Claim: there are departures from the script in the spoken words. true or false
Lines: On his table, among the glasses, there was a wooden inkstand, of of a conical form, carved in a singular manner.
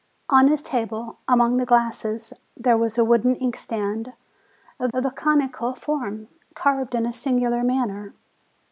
false